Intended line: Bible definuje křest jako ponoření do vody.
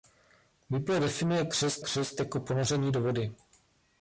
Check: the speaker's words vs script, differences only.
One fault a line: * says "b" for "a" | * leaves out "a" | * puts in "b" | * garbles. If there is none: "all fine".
* puts in "křest"